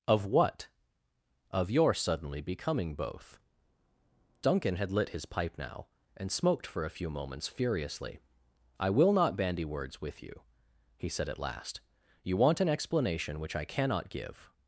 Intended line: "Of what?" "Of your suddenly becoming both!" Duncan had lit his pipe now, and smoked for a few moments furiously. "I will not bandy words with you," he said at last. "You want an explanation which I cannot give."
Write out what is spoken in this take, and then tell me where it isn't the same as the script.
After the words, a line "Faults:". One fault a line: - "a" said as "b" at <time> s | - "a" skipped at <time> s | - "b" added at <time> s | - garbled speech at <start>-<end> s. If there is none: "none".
"Of what?" "Of your suddenly becoming both!" Duncan had lit his pipe now, and smoked for a few moments furiously. "I will not bandy words with you," he said at last. "You want an explanation which I cannot give."
Faults:
none